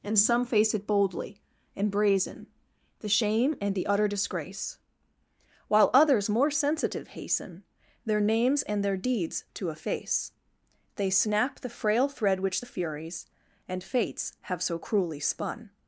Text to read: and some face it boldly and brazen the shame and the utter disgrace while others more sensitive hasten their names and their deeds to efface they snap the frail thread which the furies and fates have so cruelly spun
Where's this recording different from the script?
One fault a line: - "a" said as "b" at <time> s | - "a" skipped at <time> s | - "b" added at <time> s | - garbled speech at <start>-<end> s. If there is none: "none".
none